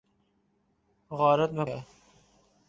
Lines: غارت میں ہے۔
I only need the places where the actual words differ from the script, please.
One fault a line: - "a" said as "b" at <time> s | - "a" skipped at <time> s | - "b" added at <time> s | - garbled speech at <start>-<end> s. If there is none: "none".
none